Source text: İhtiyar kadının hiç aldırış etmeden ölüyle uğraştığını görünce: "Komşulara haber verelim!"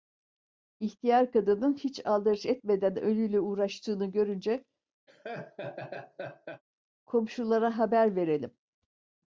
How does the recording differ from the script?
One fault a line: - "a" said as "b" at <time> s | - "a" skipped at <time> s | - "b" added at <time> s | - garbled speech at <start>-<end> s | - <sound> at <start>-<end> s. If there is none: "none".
- laugh at 5.1-6.6 s